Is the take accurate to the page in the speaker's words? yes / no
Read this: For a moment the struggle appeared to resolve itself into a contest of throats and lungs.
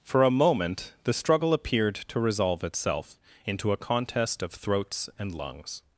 yes